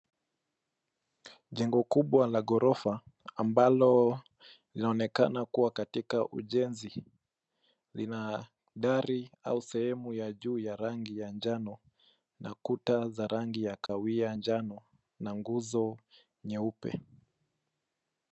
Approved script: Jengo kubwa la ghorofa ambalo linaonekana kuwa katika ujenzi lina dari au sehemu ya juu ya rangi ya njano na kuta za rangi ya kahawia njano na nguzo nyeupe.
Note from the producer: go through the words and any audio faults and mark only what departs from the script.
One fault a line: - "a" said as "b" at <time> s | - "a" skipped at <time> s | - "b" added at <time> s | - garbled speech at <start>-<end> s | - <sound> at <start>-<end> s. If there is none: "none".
- dropout at 13.9-13.9 s